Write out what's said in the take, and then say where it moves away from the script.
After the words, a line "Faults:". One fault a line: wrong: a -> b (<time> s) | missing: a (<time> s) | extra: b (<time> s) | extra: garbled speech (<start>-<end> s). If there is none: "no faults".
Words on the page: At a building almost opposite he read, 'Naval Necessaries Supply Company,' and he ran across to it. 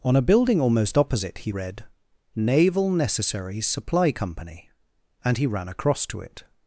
On a building almost opposite he read, 'Naval Necessaries Supply Company,' and he ran across to it.
Faults:
wrong: At -> On (0.0 s)